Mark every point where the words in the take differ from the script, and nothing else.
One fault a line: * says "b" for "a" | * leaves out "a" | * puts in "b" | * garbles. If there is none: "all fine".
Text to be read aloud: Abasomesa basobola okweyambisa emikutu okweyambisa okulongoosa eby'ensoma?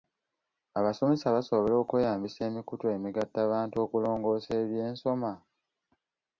* says "emigattabantu" for "okweyambisa"